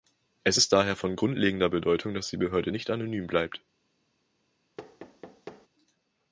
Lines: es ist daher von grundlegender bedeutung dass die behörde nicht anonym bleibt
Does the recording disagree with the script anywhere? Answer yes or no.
no